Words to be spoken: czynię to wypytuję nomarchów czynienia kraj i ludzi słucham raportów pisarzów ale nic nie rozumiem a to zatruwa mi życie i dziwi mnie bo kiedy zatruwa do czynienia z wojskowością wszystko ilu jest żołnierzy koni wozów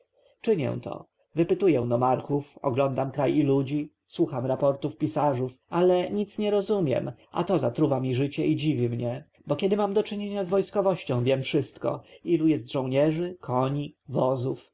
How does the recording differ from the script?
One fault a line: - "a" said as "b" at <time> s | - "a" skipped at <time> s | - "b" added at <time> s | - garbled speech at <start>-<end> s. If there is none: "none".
- "czynienia" said as "oglądam" at 2.6 s
- "zatruwa" said as "mam" at 9.8 s
- "wiem" added at 11.2 s